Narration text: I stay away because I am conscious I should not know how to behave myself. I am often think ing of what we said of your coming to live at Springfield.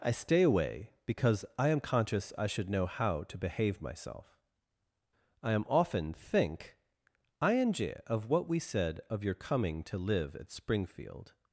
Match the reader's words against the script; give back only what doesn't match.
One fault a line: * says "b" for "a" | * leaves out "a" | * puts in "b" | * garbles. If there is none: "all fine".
* leaves out "not"